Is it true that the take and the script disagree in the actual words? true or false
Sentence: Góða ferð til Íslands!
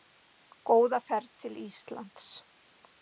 false